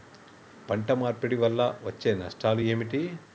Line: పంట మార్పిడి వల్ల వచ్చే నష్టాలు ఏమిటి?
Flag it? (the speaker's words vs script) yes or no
no